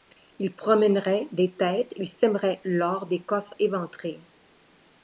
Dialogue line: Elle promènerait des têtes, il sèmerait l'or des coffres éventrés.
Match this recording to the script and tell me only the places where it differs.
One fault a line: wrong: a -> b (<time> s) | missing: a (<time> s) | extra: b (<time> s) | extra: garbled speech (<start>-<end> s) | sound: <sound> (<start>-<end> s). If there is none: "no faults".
wrong: Elle -> Il (0.4 s)